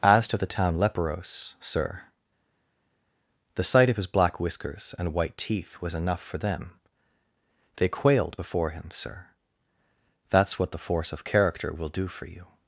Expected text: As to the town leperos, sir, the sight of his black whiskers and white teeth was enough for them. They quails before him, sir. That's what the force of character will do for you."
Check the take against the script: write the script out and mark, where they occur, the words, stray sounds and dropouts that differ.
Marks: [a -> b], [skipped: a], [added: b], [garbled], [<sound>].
As to the town leperos, sir, the sight of his black whiskers and white teeth was enough for them. They [quails -> quailed] before him, sir. That's what the force of character will do for you."